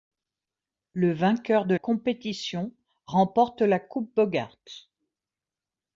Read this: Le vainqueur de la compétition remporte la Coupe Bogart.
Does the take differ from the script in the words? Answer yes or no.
yes